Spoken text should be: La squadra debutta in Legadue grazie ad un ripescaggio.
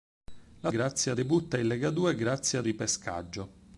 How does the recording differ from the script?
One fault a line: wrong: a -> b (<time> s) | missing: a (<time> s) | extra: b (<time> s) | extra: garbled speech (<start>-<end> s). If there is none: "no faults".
wrong: squadra -> grazie (0.7 s)
missing: un (2.7 s)